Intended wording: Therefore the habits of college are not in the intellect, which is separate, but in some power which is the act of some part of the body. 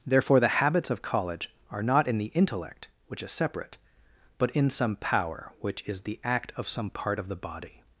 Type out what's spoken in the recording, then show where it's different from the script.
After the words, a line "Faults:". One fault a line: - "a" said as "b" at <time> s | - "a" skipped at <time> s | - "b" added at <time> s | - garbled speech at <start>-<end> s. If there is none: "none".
Therefore the habits of college are not in the intellect, which is separate, but in some power which is the act of some part of the body.
Faults:
none